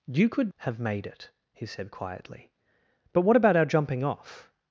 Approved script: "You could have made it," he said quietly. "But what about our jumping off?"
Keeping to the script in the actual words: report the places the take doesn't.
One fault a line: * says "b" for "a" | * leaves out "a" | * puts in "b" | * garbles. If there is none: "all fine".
all fine